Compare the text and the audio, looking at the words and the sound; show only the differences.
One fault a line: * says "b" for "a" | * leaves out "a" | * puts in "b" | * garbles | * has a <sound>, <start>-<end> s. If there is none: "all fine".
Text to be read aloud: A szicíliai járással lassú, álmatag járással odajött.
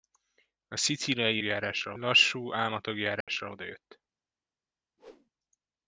* has a dropout, 3.2-3.3 s
* has a whoosh, 5.0-5.3 s